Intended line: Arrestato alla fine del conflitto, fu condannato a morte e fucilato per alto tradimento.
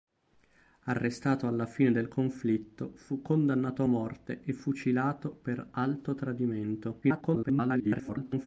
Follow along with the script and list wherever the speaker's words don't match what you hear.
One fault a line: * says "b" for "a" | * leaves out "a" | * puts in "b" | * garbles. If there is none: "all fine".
* garbles